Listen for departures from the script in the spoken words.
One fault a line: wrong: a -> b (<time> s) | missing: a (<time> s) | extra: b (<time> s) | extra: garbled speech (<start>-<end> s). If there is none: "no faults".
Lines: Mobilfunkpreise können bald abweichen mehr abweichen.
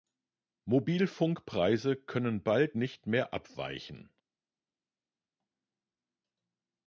wrong: abweichen -> nicht (2.7 s)